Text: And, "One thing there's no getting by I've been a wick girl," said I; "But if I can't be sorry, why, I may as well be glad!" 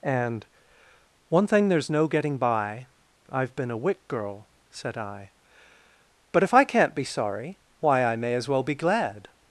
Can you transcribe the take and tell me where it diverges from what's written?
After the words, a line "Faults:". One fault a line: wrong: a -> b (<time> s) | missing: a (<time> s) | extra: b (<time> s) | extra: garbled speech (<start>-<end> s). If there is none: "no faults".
And, "One thing there's no getting by I've been a wick girl," said I; "But if I can't be sorry, why, I may as well be glad!"
Faults:
no faults